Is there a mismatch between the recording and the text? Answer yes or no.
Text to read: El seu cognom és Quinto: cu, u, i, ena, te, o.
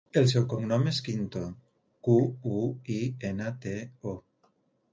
no